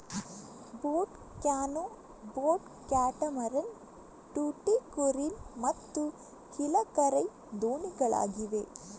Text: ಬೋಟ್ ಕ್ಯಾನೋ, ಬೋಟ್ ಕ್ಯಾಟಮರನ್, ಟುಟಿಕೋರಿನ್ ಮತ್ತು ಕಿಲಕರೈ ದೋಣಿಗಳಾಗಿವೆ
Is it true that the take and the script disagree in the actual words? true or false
false